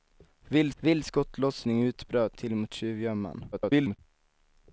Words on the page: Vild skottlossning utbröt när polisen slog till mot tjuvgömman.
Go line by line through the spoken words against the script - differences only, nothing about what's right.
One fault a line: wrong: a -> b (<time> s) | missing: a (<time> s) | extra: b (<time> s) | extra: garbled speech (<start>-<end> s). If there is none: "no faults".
extra: vild (0.8 s)
missing: när polisen slog (2.4 s)
extra: garbled speech (3.5-4.0 s)